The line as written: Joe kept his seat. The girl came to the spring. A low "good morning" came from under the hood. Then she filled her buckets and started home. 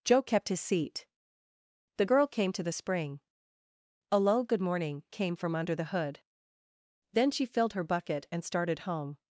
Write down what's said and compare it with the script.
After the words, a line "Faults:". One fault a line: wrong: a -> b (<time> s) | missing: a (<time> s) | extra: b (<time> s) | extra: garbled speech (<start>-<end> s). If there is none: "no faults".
Joe kept his seat. The girl came to the spring. A low "good morning" came from under the hood. Then she filled her bucket and started home.
Faults:
wrong: buckets -> bucket (7.8 s)